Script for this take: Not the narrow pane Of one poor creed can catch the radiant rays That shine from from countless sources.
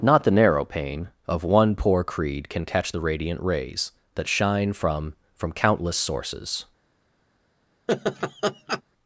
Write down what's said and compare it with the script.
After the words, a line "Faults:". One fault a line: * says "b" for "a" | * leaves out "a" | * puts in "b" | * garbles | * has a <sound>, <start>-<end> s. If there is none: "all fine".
Not the narrow pane Of one poor creed can catch the radiant rays That shine from from countless sources.
Faults:
* has a laugh, 7.9-8.8 s